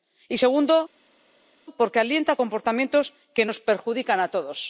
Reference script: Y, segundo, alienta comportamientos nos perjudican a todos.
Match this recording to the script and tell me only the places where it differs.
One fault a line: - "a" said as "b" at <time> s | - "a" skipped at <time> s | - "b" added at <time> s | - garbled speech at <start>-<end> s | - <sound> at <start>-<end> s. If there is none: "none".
- "porque" added at 1.8 s
- "que" added at 3.4 s